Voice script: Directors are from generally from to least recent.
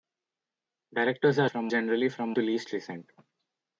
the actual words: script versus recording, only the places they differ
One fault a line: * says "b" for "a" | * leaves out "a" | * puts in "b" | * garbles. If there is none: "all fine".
all fine